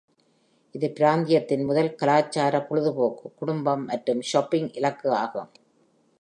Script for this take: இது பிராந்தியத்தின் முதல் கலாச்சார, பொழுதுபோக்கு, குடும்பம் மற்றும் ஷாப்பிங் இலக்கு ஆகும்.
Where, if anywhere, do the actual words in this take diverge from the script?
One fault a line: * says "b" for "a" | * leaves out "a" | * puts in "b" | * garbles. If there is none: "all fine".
all fine